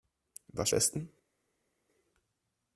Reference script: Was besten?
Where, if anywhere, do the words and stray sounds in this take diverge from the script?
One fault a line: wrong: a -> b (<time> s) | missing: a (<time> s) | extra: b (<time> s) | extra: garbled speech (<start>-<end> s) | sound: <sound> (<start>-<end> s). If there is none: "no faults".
no faults